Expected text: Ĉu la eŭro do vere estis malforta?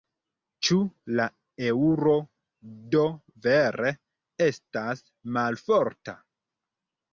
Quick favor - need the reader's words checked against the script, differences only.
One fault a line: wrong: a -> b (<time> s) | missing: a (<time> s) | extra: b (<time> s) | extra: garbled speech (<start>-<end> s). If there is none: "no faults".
wrong: estis -> estas (4.5 s)